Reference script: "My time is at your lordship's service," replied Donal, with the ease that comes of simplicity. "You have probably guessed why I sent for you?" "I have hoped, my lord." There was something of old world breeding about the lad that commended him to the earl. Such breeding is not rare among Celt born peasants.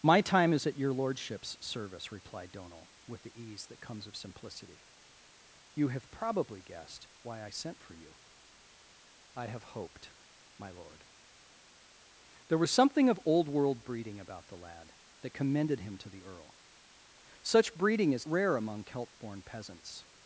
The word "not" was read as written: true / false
false